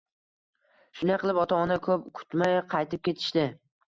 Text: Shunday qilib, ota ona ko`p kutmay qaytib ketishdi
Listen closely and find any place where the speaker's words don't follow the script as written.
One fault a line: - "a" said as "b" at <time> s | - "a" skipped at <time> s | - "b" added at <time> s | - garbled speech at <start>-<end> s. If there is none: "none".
none